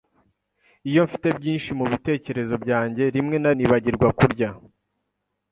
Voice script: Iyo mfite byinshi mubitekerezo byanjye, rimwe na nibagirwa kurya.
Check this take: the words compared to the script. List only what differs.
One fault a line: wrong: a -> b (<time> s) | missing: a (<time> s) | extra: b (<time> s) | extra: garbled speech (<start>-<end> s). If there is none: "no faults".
no faults